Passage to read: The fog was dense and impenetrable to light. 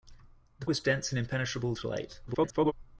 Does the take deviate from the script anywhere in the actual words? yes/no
yes